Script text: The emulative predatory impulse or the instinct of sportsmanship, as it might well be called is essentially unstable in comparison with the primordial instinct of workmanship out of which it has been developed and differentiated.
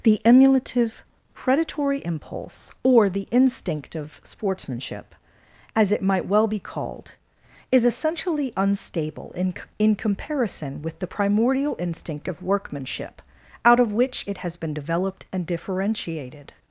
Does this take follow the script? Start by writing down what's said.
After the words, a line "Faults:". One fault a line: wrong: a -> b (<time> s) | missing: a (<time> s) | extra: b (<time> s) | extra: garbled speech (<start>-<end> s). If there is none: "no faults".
The emulative predatory impulse or the instinct of sportsmanship, as it might well be called is essentially unstable in in comparison with the primordial instinct of workmanship out of which it has been developed and differentiated.
Faults:
extra: in (9.8 s)